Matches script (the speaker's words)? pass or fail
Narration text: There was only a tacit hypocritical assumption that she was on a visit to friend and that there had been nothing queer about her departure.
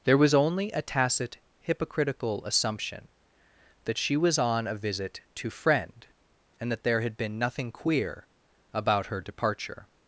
pass